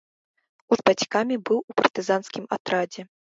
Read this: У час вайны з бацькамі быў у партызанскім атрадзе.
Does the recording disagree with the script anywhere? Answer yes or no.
yes